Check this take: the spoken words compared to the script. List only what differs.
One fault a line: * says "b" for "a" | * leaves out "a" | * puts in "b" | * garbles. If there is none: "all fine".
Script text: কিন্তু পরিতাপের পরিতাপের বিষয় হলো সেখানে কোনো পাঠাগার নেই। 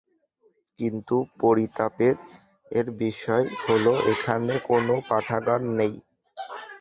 * leaves out "পরিতাপের"
* says "এখানে" for "সেখানে"